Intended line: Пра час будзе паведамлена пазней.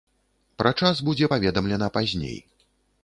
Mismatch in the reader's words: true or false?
false